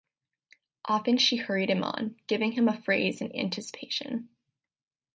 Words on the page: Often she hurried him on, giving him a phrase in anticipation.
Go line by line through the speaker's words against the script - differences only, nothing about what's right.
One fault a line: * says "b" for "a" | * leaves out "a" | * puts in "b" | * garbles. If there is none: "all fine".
all fine